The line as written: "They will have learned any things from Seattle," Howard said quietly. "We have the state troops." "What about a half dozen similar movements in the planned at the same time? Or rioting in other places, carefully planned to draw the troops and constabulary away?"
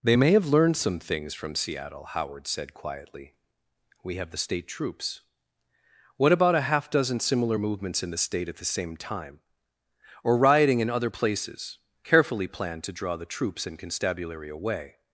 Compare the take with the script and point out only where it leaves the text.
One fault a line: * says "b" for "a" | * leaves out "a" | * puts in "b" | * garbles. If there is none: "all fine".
* says "may" for "will"
* says "some" for "any"
* says "state" for "planned"